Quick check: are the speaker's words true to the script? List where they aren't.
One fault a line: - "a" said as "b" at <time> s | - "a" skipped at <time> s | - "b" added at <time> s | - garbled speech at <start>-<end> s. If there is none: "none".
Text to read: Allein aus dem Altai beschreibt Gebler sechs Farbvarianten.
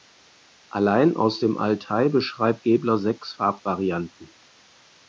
none